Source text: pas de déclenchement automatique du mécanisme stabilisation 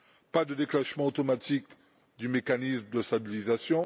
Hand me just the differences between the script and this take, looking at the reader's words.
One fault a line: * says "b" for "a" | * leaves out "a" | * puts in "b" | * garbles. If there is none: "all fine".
* puts in "de"